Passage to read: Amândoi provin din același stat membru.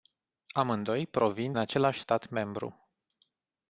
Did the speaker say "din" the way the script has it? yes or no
no